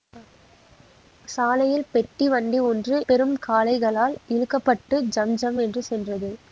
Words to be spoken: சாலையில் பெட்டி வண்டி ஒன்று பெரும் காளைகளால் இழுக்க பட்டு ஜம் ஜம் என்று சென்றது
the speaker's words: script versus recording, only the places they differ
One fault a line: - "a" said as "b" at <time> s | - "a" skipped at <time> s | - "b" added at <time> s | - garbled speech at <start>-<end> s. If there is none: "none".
none